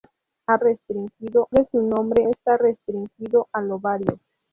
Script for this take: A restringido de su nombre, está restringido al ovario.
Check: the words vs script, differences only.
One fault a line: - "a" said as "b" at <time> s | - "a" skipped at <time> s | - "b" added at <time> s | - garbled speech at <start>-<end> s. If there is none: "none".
none